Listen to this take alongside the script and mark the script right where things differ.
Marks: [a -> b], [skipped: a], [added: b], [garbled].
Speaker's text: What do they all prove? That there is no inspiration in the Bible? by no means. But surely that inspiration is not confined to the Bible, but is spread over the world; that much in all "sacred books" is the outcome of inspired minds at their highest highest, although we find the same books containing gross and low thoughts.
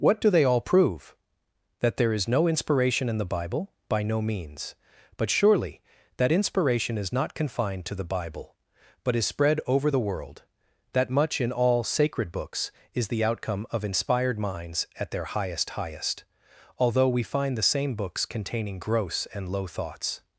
What do they all prove? That there is no inspiration in the Bible? by no means. But surely that inspiration is not confined to the Bible, but is spread over the world; that much in all "sacred books" is the outcome of inspired minds at their highest highest, although we find the same books containing gross and low thoughts.